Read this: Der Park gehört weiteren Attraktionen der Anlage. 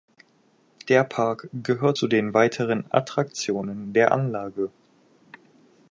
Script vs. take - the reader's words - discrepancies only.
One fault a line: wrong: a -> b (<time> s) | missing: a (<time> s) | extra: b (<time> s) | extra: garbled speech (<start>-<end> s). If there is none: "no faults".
extra: zu den (1.9 s)